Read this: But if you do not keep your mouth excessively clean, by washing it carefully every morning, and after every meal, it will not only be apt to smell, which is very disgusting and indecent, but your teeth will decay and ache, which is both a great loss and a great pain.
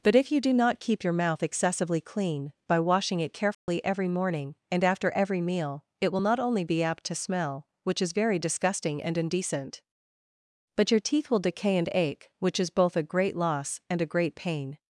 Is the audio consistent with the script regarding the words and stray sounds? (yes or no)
no